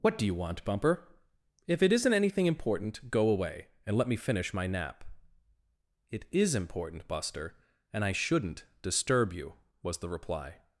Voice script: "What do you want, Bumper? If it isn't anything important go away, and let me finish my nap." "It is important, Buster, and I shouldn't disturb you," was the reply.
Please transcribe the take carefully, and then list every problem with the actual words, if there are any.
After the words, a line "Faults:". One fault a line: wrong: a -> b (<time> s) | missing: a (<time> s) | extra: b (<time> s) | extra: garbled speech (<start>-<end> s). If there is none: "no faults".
"What do you want, Bumper? If it isn't anything important go away, and let me finish my nap." "It is important, Buster, and I shouldn't disturb you," was the reply.
Faults:
no faults